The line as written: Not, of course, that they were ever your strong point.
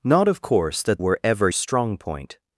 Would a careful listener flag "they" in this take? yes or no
yes